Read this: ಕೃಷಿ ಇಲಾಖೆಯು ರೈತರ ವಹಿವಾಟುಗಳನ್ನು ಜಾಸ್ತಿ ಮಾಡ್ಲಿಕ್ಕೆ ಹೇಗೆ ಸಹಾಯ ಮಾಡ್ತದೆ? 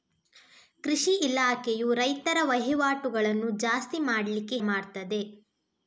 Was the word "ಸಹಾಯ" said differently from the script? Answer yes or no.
yes